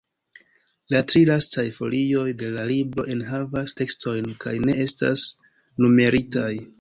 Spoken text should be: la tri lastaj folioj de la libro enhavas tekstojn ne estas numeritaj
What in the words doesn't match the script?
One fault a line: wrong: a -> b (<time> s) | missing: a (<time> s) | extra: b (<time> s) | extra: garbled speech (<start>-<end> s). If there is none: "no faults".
extra: kaj (4.4 s)